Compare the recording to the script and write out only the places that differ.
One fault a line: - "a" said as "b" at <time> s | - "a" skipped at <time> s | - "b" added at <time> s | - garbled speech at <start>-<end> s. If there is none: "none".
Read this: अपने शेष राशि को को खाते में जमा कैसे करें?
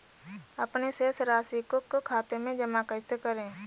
none